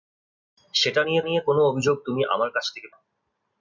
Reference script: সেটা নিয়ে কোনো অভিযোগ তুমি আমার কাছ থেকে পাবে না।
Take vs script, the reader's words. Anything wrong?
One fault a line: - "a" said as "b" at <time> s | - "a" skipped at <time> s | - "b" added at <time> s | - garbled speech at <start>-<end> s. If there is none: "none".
- "নিয়ে" added at 1.2 s
- "পাবে" skipped at 2.9 s